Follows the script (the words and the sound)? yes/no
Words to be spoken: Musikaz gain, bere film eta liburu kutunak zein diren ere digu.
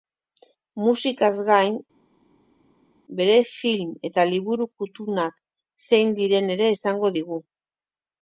no